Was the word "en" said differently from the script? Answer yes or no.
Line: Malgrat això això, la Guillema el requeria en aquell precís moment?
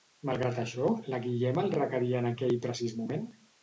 no